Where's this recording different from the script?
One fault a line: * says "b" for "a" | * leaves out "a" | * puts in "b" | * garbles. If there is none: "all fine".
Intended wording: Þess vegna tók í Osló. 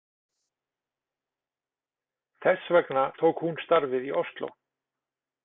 * puts in "hún starfið"